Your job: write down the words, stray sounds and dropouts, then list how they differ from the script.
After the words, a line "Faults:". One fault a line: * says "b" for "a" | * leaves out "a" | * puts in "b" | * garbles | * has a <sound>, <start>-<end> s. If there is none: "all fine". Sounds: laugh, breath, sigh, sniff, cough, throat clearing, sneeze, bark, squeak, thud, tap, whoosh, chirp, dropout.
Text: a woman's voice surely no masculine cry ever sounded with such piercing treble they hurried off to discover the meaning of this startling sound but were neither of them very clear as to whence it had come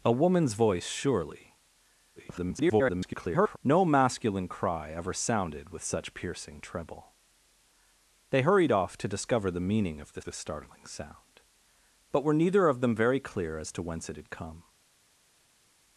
a woman's voice surely [garbled] no masculine cry ever sounded with such piercing treble they hurried off to discover the meaning of this this startling sound but were neither of them very clear as to whence it had come
Faults:
* garbles
* puts in "this"